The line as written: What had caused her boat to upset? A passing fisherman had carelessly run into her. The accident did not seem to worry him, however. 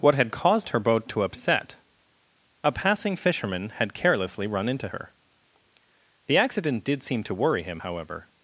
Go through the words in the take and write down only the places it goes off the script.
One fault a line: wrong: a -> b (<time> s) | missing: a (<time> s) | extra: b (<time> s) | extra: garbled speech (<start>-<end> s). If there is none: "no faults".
missing: not (7.0 s)